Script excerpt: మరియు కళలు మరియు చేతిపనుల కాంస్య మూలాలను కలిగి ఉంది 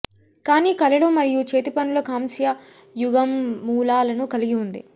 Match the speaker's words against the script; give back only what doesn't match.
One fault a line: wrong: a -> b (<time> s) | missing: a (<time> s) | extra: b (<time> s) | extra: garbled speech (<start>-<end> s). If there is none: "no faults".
wrong: మరియు -> కానీ (0.5 s)
extra: యుగం (2.9 s)